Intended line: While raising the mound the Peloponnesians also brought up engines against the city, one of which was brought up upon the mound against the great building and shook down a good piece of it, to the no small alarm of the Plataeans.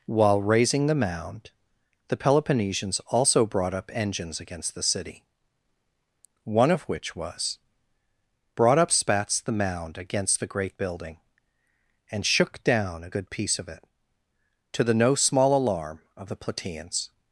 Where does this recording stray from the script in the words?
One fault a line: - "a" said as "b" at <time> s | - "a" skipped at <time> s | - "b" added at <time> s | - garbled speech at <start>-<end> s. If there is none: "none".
- "upon" said as "spats" at 8.9 s